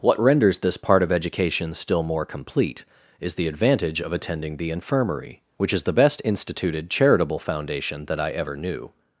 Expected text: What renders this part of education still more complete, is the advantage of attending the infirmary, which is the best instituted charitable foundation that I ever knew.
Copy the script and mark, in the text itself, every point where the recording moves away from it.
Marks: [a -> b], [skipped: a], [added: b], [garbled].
What renders this part of education still more complete, is the advantage of attending the infirmary, which is the best instituted charitable foundation that I ever knew.